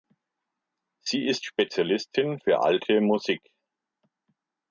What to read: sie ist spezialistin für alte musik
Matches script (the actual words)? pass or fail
pass